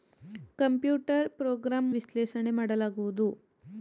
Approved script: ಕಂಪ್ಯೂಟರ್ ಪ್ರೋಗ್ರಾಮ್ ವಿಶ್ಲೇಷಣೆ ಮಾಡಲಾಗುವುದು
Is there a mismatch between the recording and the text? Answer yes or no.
no